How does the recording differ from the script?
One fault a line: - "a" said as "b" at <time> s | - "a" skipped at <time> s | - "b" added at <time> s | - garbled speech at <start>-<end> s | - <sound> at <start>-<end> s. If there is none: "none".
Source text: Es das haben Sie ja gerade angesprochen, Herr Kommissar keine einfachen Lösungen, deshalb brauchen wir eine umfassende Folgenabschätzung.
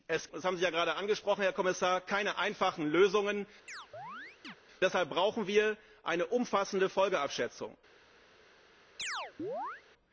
- chirp at 3.7-4.6 s
- chirp at 9.0-9.8 s